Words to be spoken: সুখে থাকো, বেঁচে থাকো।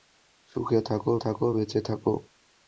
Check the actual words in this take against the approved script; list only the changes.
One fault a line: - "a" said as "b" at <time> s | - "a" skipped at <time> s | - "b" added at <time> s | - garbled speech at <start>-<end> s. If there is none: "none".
- "থাকো" added at 1.2 s